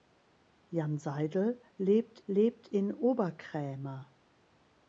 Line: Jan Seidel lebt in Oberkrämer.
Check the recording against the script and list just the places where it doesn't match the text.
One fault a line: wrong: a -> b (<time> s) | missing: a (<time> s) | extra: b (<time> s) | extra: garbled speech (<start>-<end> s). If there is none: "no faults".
extra: lebt (2.2 s)